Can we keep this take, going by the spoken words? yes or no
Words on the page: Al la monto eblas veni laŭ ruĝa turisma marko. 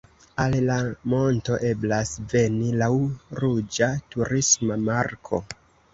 yes